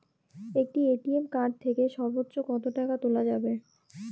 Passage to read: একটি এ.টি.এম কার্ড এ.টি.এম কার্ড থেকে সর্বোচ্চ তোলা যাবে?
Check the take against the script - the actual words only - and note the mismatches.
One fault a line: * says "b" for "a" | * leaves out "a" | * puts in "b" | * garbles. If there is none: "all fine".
* says "থেকে সর্বোচ্চ কত টাকা" for "এ.টি.এম কার্ড থেকে সর্বোচ্চ"